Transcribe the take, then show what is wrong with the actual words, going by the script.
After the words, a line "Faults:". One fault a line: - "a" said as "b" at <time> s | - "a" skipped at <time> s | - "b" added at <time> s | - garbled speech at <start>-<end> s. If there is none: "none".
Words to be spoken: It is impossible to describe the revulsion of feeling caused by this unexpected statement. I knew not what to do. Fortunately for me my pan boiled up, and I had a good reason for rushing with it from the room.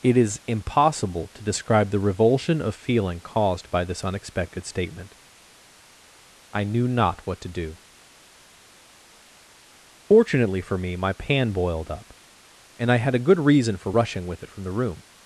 It is impossible to describe the revulsion of feeling caused by this unexpected statement. I knew not what to do. Fortunately for me my pan boiled up, and I had a good reason for rushing with it from the room.
Faults:
none